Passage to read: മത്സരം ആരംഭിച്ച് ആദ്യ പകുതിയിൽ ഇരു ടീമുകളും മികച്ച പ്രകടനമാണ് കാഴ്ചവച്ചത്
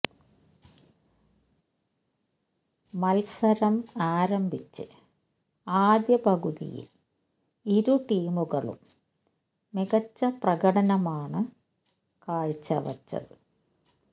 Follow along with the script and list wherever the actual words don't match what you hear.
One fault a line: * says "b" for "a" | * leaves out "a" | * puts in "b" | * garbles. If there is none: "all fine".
all fine